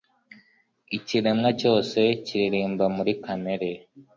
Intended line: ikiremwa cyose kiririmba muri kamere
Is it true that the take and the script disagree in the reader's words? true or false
false